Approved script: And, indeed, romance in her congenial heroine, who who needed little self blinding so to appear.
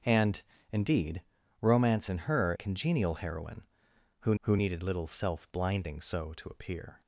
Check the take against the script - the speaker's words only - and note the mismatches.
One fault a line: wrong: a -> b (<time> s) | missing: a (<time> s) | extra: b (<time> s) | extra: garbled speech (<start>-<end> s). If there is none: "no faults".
no faults